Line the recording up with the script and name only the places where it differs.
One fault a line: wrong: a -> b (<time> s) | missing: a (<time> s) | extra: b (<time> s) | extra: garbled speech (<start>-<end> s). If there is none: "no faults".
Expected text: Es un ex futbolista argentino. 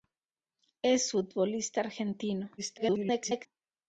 missing: un ex (1.1 s)
extra: garbled speech (2.6-3.5 s)